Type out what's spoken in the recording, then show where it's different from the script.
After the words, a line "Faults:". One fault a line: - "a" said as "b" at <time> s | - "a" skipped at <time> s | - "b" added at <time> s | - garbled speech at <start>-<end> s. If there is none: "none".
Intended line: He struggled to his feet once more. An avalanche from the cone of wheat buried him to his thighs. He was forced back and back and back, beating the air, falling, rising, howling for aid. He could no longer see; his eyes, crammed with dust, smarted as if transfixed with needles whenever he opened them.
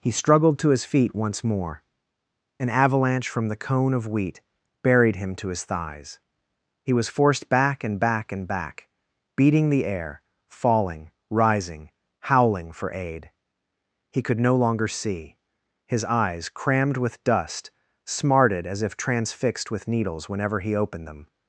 He struggled to his feet once more. An avalanche from the cone of wheat buried him to his thighs. He was forced back and back and back, beating the air, falling, rising, howling for aid. He could no longer see; his eyes, crammed with dust, smarted as if transfixed with needles whenever he opened them.
Faults:
none